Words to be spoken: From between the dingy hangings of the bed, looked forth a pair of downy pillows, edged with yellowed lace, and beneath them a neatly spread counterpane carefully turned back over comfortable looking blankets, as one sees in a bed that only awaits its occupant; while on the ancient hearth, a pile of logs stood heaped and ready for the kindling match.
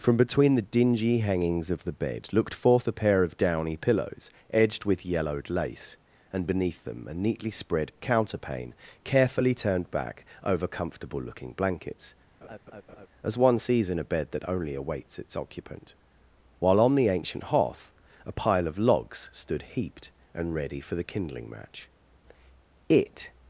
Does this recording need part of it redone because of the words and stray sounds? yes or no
yes